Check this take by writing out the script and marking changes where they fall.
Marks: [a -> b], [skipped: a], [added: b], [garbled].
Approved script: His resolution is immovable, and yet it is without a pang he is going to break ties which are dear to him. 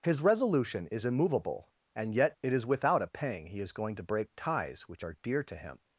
His resolution is immovable, and yet it is without a pang he is going to break ties which are dear to him.